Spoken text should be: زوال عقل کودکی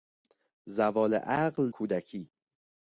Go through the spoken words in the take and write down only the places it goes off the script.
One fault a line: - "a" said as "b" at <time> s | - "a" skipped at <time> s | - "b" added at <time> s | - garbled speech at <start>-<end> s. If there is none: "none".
none